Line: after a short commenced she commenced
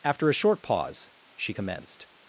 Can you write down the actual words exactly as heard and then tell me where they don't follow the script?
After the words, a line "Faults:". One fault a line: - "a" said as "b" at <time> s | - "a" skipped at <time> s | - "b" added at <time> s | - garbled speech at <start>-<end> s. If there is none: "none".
after a short pause she commenced
Faults:
- "commenced" said as "pause" at 0.6 s